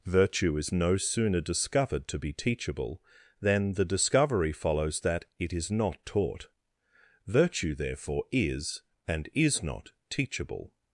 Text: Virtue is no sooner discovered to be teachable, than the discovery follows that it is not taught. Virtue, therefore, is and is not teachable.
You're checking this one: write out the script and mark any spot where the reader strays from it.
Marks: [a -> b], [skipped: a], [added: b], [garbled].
Virtue is no sooner discovered to be teachable, than the discovery follows that it is not taught. Virtue, therefore, is and is not teachable.